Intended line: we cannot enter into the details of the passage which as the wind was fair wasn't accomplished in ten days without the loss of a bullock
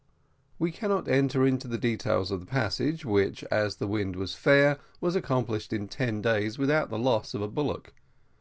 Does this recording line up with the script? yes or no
no